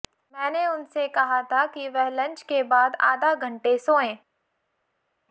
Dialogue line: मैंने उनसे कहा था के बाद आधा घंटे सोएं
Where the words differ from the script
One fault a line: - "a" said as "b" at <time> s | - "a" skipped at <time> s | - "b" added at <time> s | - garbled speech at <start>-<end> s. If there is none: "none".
- "कि वह लंच" added at 1.6 s